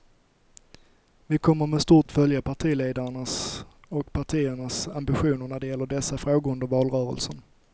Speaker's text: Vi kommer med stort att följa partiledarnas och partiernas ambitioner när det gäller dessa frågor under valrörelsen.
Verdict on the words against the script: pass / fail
pass